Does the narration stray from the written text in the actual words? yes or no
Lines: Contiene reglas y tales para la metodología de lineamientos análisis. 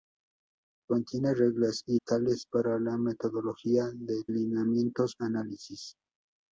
no